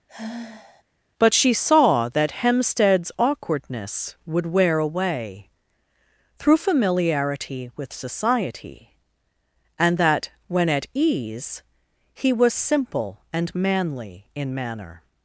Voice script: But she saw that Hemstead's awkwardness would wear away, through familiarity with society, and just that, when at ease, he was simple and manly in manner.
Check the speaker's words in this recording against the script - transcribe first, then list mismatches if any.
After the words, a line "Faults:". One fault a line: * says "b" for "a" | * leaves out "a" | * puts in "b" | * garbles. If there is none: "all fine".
But she saw that Hemstead's awkwardness would wear away, through familiarity with society, and that, when at ease, he was simple and manly in manner.
Faults:
* leaves out "just"